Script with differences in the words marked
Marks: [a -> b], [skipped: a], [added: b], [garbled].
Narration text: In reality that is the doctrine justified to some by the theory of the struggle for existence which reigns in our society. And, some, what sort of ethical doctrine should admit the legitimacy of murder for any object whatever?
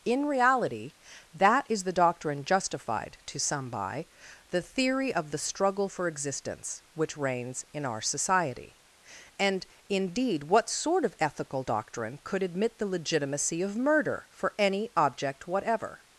In reality that is the doctrine justified to some by the theory of the struggle for existence which reigns in our society. And, [some, -> indeed] what sort of ethical doctrine [should -> could] admit the legitimacy of murder for any object whatever?